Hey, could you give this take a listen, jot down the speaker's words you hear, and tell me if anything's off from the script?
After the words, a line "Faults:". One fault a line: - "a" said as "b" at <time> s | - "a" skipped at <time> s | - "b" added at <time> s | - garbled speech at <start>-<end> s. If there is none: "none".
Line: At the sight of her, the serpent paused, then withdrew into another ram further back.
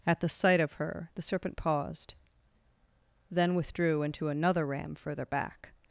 At the sight of her, the serpent paused, then withdrew into another ram further back.
Faults:
none